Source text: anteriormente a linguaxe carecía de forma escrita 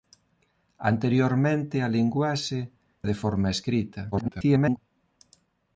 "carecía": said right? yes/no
no